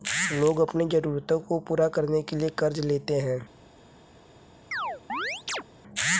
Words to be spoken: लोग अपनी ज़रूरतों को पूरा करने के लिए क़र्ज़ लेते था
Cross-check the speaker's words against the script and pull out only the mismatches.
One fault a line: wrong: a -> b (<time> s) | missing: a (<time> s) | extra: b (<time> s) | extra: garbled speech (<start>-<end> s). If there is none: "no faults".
wrong: था -> है (3.2 s)